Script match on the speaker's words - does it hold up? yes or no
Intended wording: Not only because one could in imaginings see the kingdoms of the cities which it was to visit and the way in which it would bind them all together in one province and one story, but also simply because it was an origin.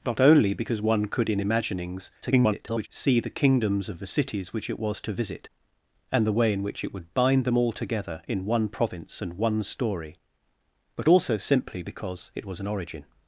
no